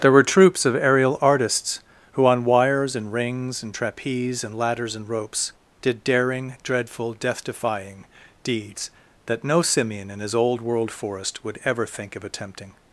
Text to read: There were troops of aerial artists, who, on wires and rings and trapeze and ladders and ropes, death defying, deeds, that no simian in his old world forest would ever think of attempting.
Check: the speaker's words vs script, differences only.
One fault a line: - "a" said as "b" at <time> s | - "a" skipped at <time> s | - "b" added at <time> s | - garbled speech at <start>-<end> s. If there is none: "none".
- "did daring dreadful" added at 5.8 s